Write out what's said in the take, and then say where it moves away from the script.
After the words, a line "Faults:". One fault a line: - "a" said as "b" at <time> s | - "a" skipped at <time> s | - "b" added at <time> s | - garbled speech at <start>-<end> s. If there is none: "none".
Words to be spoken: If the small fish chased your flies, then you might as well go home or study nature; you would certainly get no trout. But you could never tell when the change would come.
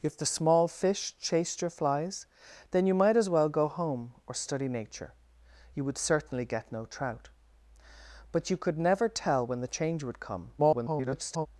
If the small fish chased your flies, then you might as well go home or study nature; you would certainly get no trout. But you could never tell when the change would come. [garbled]
Faults:
- garbled speech at 10.6-11.5 s